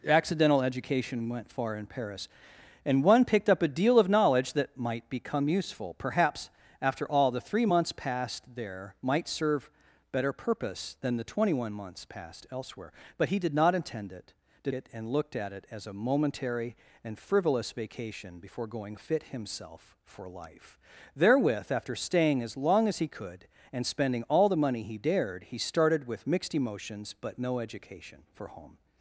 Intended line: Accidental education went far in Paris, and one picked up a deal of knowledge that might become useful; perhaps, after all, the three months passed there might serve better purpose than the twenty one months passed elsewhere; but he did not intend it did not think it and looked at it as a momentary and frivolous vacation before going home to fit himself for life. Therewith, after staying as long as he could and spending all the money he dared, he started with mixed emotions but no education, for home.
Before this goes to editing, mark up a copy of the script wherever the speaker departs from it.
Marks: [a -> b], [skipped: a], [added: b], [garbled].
Accidental education went far in Paris, and one picked up a deal of knowledge that might become useful; perhaps, after all, the three months passed there might serve better purpose than the twenty one months passed elsewhere; but he did not intend it did [skipped: not think] it and looked at it as a momentary and frivolous vacation before going [skipped: home to] fit himself for life. Therewith, after staying as long as he could and spending all the money he dared, he started with mixed emotions but no education, for home.